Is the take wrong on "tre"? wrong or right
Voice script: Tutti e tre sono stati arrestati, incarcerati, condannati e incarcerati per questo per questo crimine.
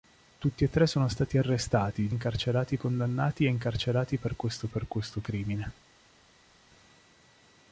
right